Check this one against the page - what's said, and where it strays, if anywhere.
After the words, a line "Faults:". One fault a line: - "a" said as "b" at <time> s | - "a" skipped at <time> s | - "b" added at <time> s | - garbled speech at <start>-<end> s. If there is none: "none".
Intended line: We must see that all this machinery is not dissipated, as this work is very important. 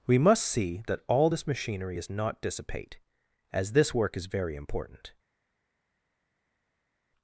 We must see that all this machinery is not dissipate, as this work is very important.
Faults:
- "dissipated" said as "dissipate" at 2.4 s